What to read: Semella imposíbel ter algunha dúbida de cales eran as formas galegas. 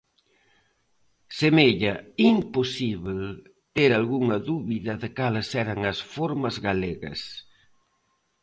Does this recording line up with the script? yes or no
yes